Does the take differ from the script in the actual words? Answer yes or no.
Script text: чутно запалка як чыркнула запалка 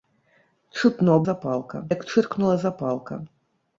no